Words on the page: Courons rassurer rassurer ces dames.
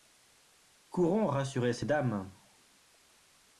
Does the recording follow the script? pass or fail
fail